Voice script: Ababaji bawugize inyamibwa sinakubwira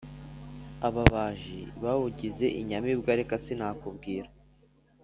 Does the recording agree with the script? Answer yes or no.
no